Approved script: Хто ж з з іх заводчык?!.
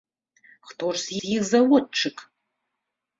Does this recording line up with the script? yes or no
yes